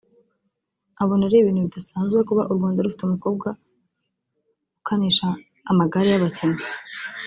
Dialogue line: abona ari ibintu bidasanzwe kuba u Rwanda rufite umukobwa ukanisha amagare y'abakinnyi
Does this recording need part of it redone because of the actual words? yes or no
no